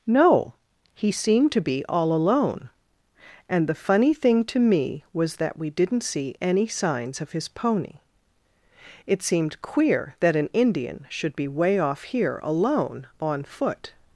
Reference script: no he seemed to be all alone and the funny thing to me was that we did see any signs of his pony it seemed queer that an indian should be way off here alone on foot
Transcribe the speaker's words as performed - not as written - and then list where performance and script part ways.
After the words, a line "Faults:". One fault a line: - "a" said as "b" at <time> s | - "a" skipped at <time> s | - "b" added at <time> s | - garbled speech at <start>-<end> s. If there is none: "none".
no he seemed to be all alone and the funny thing to me was that we didn't see any signs of his pony it seemed queer that an indian should be way off here alone on foot
Faults:
- "did" said as "didn't" at 5.7 s